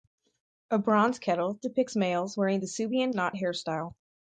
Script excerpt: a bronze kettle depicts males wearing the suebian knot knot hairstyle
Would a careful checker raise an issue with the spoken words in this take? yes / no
yes